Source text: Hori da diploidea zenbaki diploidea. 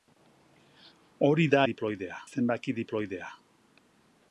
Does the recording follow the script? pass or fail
pass